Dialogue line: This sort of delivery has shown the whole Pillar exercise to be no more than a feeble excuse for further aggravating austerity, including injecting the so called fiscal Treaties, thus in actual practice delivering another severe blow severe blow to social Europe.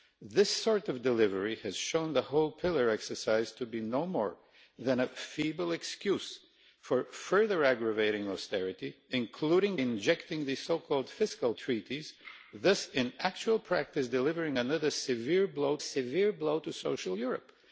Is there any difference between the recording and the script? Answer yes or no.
no